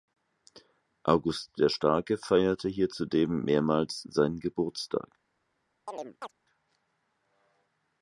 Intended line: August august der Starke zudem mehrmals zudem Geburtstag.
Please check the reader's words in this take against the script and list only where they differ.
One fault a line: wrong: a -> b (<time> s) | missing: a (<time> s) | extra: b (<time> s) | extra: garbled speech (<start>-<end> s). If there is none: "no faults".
missing: august (1.6 s)
extra: feierte hier (2.2 s)
wrong: zudem -> seinen (4.1 s)